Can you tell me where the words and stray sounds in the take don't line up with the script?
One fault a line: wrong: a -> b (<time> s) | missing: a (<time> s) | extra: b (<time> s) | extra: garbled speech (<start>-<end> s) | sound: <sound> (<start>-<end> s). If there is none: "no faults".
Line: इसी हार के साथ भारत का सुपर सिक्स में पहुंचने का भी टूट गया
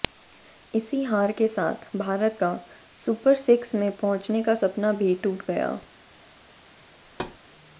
extra: सपना (4.5 s)
sound: thud (7.0-7.4 s)